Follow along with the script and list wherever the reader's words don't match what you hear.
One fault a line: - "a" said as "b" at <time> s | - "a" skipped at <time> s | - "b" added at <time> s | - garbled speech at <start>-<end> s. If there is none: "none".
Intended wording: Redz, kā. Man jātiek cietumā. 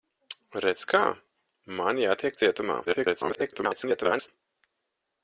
- garbled speech at 2.8-4.3 s